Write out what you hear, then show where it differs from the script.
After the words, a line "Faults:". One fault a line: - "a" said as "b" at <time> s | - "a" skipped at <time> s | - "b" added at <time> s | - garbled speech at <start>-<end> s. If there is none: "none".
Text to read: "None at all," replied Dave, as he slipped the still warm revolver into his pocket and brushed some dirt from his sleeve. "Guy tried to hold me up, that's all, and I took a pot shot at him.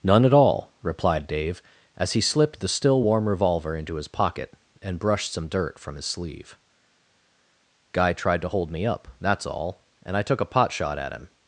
"None at all," replied Dave, as he slipped the still warm revolver into his pocket and brushed some dirt from his sleeve. "Guy tried to hold me up, that's all, and I took a pot shot at him.
Faults:
none